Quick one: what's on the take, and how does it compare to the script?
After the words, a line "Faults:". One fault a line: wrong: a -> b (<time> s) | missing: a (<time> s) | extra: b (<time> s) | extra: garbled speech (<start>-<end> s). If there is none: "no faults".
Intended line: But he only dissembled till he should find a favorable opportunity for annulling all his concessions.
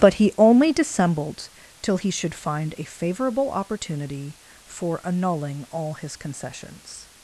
But he only dissembled till he should find a favorable opportunity for annulling all his concessions.
Faults:
no faults